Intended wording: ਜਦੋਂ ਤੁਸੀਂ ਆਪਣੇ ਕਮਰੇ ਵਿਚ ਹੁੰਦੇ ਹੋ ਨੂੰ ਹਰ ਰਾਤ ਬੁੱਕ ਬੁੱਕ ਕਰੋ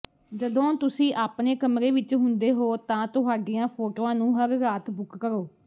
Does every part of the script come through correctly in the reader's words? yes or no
no